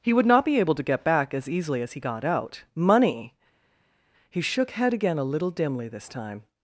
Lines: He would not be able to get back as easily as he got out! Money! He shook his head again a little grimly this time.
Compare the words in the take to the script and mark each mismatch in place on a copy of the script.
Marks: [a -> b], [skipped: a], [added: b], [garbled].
He would not be able to get back as easily as he got out! Money! He shook [skipped: his] head again a little [grimly -> dimly] this time.